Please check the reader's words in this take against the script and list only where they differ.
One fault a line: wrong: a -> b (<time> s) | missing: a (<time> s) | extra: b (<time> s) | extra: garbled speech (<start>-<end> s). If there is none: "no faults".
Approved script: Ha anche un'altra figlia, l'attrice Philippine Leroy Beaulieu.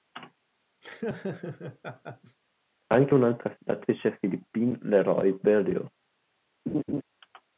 missing: figlia (3.5 s)